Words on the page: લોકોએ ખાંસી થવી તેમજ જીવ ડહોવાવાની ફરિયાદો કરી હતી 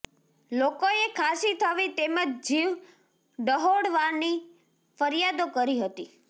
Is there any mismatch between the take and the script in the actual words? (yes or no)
no